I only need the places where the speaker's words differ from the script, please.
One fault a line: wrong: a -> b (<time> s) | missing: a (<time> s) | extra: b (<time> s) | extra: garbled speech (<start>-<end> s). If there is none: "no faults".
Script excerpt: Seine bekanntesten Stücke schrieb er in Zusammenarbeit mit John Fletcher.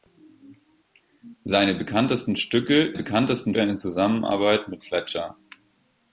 wrong: schrieb -> bekanntesten (2.9 s)
missing: John (4.8 s)